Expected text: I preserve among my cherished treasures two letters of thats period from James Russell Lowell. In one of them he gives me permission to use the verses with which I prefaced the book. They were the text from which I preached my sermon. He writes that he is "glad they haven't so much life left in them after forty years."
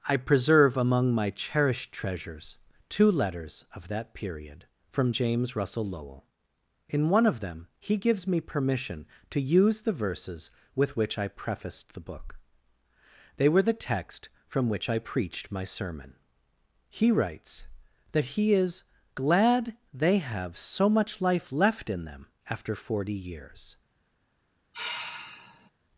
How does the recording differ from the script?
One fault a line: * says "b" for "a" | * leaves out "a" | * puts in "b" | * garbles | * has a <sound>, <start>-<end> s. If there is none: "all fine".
* says "that" for "thats"
* says "have" for "haven't"
* has a sigh, 24.7-25.7 s